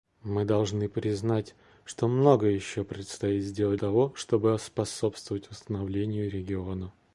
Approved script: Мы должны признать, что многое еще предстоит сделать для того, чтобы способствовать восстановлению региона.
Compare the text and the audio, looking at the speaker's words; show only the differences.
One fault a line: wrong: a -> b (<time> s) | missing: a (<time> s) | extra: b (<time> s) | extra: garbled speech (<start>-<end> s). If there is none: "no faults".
missing: для (3.8 s)